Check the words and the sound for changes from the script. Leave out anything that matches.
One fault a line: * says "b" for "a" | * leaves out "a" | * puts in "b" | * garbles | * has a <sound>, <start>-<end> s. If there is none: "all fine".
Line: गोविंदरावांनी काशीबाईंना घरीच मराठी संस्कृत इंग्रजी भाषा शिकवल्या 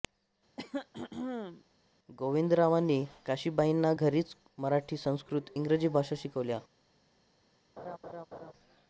* has a throat clearing, 0.6-1.6 s
* has a laugh, 7.8-8.5 s